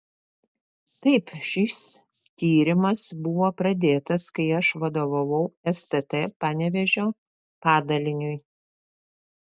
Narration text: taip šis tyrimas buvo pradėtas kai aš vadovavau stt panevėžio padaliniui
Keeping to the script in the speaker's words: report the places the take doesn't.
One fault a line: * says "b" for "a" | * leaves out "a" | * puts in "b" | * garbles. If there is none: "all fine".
all fine